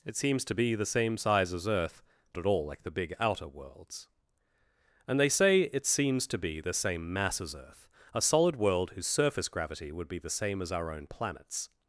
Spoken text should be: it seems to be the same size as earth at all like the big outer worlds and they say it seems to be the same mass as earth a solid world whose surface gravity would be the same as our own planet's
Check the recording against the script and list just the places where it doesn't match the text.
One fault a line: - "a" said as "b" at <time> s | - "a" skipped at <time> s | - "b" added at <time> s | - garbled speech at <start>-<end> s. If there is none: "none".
none